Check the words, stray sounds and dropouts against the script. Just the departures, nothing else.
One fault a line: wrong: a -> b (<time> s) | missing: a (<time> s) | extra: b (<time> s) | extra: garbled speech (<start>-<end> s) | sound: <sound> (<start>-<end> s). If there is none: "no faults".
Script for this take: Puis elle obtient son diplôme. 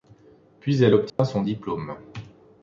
sound: dropout (1.1-1.2 s)